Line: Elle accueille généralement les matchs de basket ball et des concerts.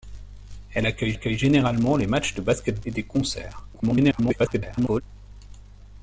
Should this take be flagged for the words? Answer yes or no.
yes